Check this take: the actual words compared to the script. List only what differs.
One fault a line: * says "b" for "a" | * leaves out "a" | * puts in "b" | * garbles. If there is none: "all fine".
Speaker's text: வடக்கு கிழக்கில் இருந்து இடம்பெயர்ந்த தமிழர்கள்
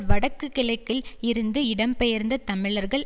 all fine